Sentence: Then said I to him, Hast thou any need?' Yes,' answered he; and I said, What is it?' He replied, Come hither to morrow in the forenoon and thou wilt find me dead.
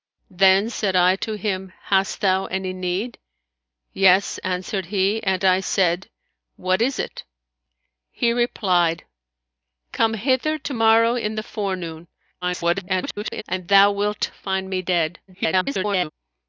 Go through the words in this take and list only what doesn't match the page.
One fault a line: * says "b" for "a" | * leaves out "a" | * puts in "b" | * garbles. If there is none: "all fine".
* garbles
* garbles